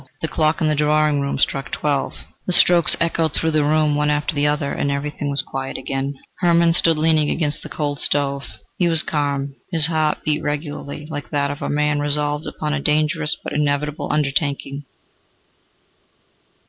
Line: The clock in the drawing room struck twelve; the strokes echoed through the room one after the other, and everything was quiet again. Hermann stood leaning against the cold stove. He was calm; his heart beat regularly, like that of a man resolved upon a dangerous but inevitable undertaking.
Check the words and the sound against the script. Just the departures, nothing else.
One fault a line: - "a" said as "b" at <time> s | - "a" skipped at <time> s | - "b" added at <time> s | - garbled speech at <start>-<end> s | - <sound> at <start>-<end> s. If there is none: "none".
none